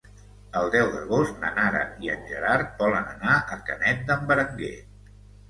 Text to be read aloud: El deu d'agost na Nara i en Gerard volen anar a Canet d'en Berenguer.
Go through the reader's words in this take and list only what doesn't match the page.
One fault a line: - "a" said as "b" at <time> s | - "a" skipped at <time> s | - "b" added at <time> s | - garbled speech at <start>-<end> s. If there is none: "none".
none